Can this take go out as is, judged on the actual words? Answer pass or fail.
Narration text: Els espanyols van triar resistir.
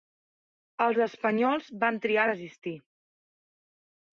pass